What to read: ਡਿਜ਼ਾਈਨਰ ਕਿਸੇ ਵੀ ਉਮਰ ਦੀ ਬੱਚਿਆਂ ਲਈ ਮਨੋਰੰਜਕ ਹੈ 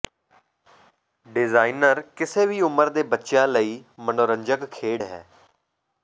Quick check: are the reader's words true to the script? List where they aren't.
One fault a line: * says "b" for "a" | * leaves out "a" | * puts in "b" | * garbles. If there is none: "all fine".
* says "ਦੇ" for "ਦੀ"
* puts in "ਖੇਡ"